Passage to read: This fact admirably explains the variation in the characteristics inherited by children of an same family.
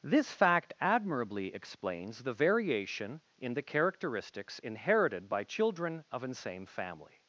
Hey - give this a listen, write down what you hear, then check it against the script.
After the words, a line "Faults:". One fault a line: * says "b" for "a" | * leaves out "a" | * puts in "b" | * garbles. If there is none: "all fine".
This fact admirably explains the variation in the characteristics inherited by children of an same family.
Faults:
all fine